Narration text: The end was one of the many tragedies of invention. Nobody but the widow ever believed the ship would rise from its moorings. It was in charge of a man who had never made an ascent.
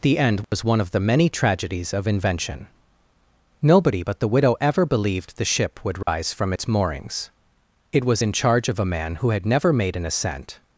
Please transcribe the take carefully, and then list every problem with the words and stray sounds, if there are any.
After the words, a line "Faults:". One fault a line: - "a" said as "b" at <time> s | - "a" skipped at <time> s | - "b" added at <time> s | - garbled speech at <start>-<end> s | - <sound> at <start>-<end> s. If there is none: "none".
The end was one of the many tragedies of invention. Nobody but the widow ever believed the ship would rise from its moorings. It was in charge of a man who had never made an ascent.
Faults:
- dropout at 0.4-0.5 s
- dropout at 6.0-6.1 s